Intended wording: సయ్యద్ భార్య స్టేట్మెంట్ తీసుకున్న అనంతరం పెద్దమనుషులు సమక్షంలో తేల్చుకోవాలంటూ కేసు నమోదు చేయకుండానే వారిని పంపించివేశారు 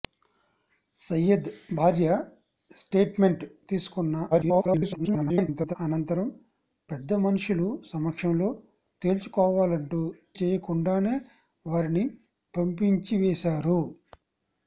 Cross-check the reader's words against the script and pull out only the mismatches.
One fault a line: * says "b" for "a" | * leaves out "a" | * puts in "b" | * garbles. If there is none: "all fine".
* garbles
* leaves out "కేసు నమోదు"